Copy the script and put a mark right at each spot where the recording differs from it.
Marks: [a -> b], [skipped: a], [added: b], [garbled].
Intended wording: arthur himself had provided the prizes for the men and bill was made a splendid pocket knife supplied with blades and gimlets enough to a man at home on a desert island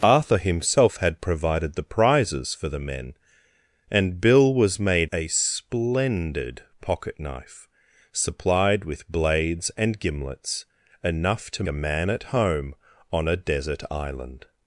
arthur himself had provided the prizes for the men and bill was made a splendid pocket knife supplied with blades and gimlets enough to a man at home on a desert island